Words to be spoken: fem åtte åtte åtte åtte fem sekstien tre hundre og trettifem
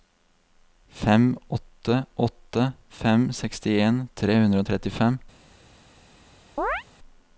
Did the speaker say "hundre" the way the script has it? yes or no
yes